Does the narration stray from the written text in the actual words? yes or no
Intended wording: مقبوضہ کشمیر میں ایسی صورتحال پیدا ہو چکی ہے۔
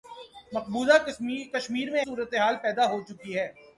yes